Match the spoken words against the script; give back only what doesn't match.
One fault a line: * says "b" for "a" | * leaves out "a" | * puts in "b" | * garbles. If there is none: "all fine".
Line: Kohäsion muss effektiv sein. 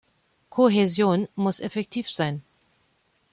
all fine